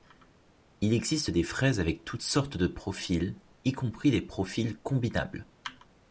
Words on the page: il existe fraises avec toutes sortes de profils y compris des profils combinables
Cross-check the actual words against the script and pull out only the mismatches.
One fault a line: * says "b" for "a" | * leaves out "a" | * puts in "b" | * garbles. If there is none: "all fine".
* puts in "des"